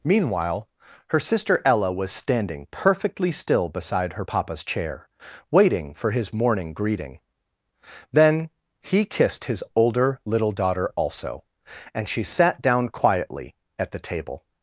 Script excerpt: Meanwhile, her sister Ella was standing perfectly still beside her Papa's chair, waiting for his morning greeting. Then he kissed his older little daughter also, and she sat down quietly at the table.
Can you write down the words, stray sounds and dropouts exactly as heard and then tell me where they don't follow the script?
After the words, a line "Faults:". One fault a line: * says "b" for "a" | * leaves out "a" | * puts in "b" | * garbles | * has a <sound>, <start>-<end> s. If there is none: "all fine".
Meanwhile, her sister Ella was standing perfectly still beside her Papa's chair, waiting for his morning greeting. Then he kissed his older little daughter also, and she sat down quietly at the table.
Faults:
all fine